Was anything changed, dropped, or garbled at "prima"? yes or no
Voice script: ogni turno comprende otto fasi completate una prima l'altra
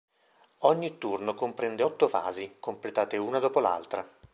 yes